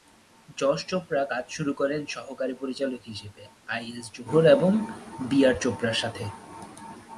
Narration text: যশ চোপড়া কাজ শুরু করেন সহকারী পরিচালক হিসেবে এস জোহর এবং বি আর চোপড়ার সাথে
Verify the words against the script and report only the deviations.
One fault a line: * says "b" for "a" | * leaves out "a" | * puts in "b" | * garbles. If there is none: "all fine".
* puts in "আই"